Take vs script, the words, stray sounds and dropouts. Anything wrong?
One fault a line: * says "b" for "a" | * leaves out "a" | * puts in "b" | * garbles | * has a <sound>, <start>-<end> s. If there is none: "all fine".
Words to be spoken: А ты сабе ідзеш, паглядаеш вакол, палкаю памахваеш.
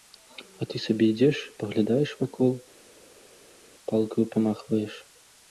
all fine